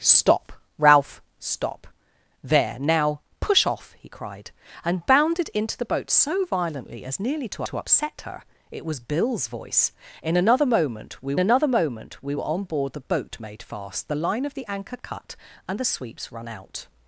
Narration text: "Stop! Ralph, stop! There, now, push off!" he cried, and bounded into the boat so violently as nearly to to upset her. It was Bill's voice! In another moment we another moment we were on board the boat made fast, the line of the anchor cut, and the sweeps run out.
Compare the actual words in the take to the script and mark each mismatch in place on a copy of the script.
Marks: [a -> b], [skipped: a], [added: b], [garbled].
"Stop! Ralph, stop! There, now, push off!" he cried, and bounded into the boat so violently as nearly to to upset her. It was Bill's voice! In another moment we another moment we were on board the boat made fast, the line of the anchor cut, and the sweeps run out.